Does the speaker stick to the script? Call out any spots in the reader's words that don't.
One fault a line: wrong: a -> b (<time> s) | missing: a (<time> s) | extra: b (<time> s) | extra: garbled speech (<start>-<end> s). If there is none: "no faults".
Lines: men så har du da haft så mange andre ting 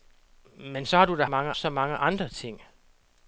wrong: haft -> mange (1.3 s)